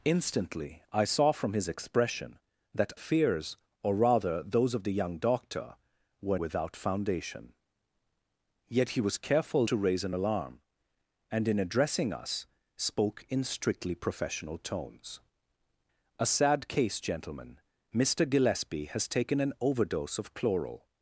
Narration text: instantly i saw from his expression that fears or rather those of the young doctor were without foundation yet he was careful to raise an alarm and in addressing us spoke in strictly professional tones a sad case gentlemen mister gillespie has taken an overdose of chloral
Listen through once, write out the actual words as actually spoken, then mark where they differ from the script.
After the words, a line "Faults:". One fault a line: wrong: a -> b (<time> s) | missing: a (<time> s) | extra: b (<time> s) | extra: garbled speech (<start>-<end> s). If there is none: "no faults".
instantly i saw from his expression that fears or rather those of the young doctor were without foundation yet he was careful to raise an alarm and in addressing us spoke in strictly professional tones a sad case gentlemen mister gillespie has taken an overdose of chloral
Faults:
no faults